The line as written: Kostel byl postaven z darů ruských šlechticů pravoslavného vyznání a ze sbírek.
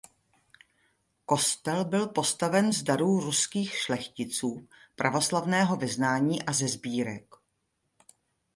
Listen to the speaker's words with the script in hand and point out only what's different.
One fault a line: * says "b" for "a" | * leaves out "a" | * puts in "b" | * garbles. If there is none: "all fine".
all fine